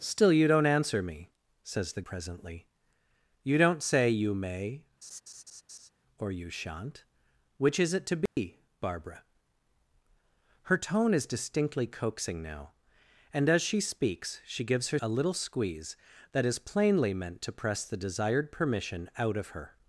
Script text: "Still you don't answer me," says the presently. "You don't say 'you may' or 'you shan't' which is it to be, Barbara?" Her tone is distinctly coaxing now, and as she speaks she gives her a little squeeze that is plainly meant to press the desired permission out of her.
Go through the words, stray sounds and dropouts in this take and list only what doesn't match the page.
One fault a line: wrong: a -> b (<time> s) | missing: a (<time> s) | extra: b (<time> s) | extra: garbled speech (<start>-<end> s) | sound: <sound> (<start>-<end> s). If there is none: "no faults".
sound: laugh (5.0-5.9 s)
sound: dropout (8.3-8.4 s)